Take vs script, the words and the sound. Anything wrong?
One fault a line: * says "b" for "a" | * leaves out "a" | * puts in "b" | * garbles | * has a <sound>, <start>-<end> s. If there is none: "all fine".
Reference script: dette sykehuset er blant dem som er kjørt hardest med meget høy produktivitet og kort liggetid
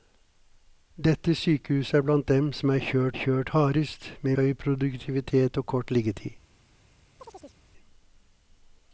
* puts in "kjørt"
* leaves out "meget"
* has a chirp, 7.2-7.6 s